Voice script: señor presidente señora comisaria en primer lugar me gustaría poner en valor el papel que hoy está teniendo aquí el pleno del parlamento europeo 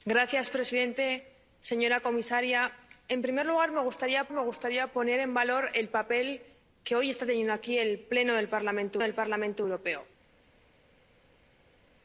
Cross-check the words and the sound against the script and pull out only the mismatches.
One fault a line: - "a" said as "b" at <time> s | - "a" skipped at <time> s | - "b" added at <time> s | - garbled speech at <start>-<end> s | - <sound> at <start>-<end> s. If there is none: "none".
- "me gustaría" added at 4.3 s
- "del parlamento" added at 9.0 s